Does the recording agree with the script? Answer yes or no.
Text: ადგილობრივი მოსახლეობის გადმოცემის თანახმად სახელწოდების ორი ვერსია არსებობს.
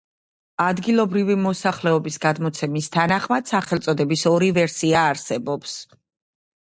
yes